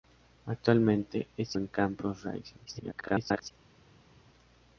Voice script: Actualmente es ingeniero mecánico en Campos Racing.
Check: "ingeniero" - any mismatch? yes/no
yes